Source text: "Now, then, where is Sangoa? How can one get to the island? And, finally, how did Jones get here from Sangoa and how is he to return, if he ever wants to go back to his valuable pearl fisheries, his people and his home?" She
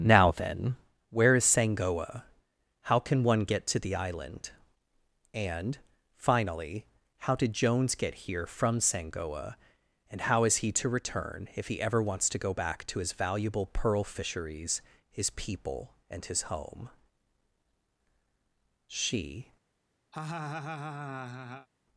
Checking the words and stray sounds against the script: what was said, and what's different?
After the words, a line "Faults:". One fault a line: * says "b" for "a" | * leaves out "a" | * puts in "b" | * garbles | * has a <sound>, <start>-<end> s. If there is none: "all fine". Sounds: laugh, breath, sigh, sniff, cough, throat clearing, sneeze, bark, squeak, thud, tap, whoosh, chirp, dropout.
"Now, then, where is Sangoa? How can one get to the island? And, finally, how did Jones get here from Sangoa and how is he to return, if he ever wants to go back to his valuable pearl fisheries, his people and his home?" She
Faults:
* has a laugh, 20.1-21.7 s